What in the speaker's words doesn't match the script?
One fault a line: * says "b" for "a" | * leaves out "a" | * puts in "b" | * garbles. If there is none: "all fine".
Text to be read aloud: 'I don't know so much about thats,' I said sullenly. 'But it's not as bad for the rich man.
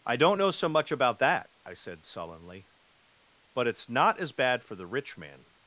* says "that" for "thats"